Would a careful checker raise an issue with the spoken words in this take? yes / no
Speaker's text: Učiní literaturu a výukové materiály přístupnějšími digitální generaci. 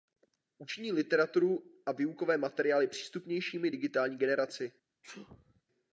no